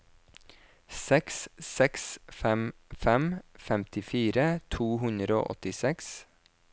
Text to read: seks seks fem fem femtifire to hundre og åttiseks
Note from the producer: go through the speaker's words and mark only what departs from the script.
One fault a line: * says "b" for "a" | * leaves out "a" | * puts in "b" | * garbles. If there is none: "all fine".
all fine